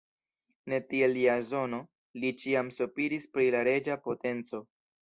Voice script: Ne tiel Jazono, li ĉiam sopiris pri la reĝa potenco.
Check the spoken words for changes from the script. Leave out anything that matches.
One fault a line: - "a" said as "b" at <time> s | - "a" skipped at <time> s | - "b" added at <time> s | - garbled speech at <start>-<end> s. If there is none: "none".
none